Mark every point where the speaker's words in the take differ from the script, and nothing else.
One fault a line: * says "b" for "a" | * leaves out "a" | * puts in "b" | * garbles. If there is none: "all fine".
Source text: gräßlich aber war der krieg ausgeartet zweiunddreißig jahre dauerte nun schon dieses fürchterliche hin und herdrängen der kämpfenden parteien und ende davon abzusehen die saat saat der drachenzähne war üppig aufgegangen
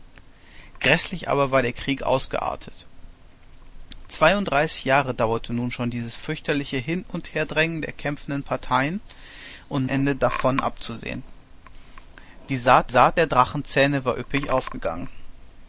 all fine